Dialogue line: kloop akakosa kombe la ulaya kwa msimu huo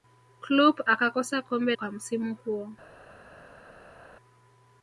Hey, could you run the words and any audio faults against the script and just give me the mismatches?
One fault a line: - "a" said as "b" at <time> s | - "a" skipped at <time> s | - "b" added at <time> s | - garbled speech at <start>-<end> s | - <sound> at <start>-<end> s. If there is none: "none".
- "la ulaya" skipped at 1.7 s